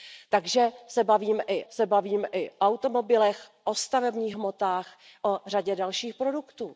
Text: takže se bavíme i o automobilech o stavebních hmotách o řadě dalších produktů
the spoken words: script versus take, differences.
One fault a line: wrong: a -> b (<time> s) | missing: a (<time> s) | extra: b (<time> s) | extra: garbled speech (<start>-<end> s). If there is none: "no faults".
extra: se bavíme i (1.7 s)